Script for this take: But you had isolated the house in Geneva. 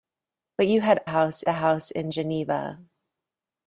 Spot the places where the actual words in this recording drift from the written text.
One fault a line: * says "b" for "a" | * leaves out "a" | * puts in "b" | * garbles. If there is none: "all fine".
* says "house" for "isolated"